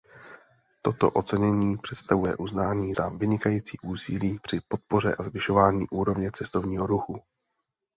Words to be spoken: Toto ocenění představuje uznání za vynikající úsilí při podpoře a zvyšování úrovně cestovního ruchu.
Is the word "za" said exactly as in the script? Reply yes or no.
yes